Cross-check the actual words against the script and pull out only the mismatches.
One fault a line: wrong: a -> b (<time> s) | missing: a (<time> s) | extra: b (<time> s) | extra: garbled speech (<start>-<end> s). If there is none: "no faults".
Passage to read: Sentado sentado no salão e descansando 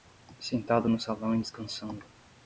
missing: sentado (0.9 s)